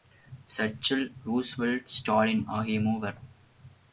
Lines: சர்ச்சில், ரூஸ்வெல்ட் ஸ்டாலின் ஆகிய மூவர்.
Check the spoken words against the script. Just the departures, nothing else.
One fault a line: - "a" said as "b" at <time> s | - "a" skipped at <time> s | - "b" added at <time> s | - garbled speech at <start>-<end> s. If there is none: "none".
none